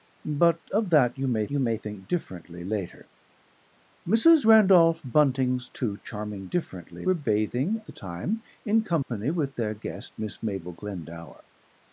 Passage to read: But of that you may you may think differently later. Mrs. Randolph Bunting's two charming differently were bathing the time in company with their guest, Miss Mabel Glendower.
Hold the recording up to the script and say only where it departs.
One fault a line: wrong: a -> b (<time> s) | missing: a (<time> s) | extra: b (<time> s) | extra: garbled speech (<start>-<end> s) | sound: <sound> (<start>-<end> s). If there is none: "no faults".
sound: dropout (9.0-9.1 s)